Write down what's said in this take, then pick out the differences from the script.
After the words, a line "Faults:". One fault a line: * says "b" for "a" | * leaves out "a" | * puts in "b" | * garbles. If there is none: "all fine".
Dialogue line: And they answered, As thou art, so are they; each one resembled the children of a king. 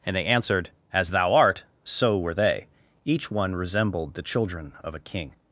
And they answered, As thou art, so were they; each one resembled the children of a king.
Faults:
* says "were" for "are"